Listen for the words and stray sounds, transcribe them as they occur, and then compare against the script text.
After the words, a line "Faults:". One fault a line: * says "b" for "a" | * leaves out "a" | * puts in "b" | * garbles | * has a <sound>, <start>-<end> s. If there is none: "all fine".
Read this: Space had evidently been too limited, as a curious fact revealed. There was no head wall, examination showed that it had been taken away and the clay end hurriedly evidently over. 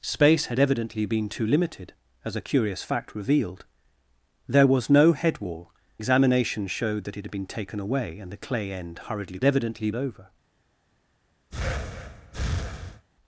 Space had evidently been too limited, as a curious fact revealed. There was no head wall, examination showed that it had been taken away and the clay end hurriedly evidently over.
Faults:
* has a breath, 11.5-13.1 s